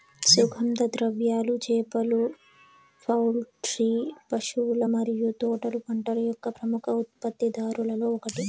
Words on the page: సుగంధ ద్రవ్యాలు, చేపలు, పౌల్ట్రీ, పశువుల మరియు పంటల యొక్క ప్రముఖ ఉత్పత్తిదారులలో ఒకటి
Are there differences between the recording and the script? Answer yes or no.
yes